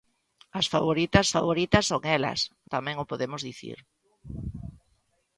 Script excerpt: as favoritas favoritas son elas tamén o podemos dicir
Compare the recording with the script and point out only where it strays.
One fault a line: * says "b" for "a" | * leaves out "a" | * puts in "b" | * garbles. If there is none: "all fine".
all fine